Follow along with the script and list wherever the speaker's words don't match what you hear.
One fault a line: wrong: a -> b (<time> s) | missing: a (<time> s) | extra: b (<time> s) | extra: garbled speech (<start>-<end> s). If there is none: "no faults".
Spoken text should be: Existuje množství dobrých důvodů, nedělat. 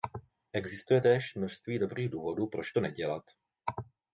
extra: též (1.0 s)
extra: proč to (2.5 s)